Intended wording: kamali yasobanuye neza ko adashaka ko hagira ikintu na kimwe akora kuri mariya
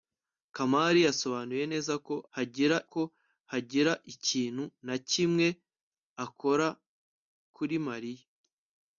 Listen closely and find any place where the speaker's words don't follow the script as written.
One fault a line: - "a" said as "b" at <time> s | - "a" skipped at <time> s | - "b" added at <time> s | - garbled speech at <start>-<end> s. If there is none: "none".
- "adashaka" said as "hagira" at 2.3 s